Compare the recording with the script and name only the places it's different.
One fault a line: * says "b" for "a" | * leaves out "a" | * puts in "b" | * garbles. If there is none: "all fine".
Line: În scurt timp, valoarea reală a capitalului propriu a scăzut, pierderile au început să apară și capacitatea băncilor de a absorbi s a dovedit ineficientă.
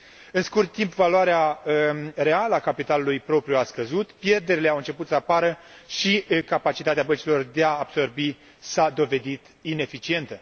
all fine